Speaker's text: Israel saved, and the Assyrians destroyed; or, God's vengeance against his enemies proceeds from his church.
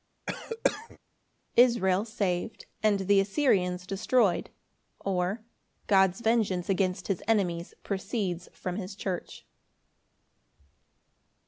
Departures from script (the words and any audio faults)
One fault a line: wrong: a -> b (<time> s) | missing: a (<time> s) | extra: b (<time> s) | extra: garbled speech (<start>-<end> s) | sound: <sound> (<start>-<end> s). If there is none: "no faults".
sound: cough (0.3-1.0 s)